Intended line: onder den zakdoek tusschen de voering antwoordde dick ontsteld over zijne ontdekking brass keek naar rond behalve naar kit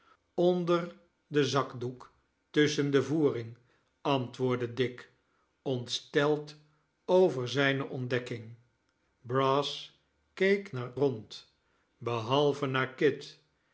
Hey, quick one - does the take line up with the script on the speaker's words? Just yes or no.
yes